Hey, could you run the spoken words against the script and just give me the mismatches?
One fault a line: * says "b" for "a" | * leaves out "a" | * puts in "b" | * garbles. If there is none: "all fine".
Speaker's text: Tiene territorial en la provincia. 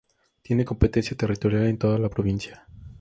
* puts in "competencia"
* puts in "toda"